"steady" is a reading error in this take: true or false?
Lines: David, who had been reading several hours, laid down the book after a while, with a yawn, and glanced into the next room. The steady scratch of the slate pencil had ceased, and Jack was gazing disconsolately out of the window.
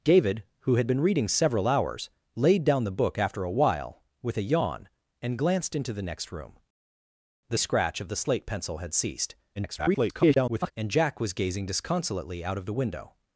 true